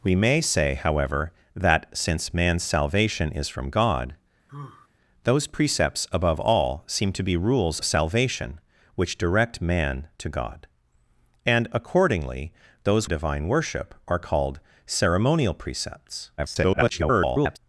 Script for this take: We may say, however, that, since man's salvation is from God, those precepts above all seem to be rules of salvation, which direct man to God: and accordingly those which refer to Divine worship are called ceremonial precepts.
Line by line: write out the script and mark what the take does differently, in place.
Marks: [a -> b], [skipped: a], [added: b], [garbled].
We may say, however, that, since man's salvation is from God, those precepts above all seem to be rules [skipped: of] salvation, which direct man to God: and accordingly those [skipped: which refer to] Divine worship are called ceremonial precepts. [garbled]